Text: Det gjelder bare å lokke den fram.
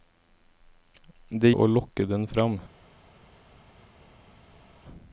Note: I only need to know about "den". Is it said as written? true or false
true